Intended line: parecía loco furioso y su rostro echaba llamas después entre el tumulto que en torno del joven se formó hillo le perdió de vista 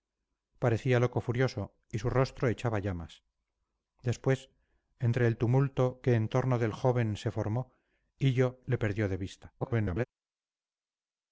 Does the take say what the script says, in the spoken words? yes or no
no